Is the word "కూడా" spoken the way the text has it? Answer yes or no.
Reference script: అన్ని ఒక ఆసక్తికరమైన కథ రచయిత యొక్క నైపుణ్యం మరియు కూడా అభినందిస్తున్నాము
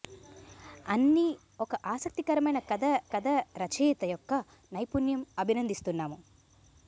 no